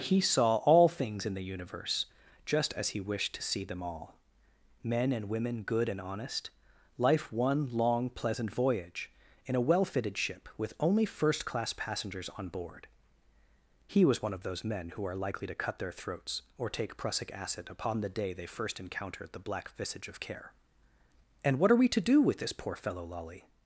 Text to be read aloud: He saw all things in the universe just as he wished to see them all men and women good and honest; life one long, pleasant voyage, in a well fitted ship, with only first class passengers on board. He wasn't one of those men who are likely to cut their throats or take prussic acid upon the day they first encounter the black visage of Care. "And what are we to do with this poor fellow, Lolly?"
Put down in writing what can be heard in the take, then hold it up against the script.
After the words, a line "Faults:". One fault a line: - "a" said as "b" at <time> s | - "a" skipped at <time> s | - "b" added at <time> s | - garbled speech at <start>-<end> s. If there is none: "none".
He saw all things in the universe just as he wished to see them all men and women good and honest; life one long, pleasant voyage, in a well fitted ship, with only first class passengers on board. He was one of those men who are likely to cut their throats or take prussic acid upon the day they first encounter the black visage of Care. "And what are we to do with this poor fellow, Lolly?"
Faults:
- "wasn't" said as "was" at 14.0 s